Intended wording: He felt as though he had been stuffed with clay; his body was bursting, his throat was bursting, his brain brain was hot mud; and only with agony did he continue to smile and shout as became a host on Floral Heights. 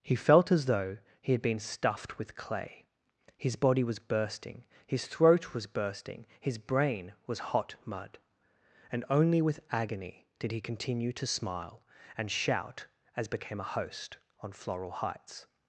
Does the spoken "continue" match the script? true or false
true